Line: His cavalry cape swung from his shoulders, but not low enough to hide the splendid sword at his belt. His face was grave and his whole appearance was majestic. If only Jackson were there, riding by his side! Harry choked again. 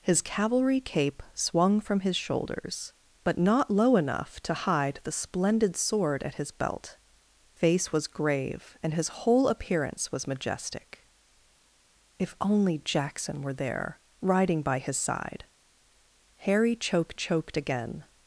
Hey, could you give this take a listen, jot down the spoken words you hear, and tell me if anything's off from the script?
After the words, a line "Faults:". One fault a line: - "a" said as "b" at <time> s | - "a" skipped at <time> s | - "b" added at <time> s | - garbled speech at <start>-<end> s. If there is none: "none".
His cavalry cape swung from his shoulders, but not low enough to hide the splendid sword at his belt. Face was grave and his whole appearance was majestic. If only Jackson were there, riding by his side! Harry choked choked again.
Faults:
- "His" skipped at 7.0 s
- "choked" added at 17.1 s